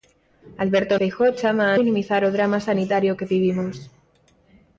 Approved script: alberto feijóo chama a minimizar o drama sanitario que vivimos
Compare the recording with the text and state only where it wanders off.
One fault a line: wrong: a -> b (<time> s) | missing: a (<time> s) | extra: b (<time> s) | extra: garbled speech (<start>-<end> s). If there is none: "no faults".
no faults